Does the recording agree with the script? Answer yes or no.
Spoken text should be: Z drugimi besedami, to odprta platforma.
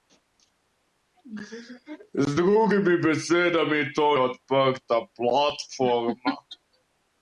yes